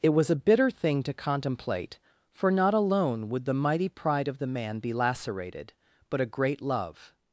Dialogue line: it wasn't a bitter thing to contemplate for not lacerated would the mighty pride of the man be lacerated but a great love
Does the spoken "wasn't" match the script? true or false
false